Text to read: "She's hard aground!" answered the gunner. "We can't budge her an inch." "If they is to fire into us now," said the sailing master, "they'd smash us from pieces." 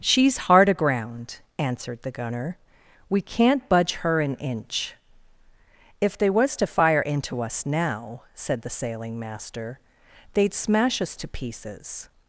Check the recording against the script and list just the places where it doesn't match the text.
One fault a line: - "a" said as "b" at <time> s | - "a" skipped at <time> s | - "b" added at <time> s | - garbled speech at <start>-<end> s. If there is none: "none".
- "is" said as "was" at 6.3 s
- "from" said as "to" at 11.2 s